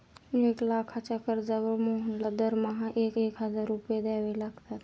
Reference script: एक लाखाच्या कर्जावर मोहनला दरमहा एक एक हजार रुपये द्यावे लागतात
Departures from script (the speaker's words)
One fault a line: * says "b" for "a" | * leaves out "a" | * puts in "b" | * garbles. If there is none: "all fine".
all fine